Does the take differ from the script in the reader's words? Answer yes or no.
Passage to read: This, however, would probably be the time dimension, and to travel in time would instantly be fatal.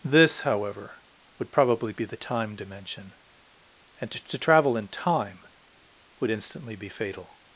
yes